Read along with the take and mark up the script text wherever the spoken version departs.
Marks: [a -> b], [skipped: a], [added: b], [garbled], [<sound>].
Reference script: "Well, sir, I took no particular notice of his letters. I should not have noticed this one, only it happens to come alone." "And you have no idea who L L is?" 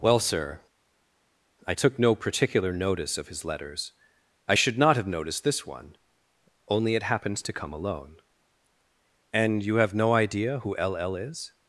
"Well, sir, I took no particular notice of his letters. I should not have noticed this one, only it happens to come alone." "And you have no idea who L L is?"